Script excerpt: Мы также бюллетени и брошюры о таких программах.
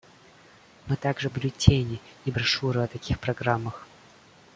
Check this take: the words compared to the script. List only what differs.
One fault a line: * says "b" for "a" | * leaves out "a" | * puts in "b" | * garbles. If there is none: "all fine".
all fine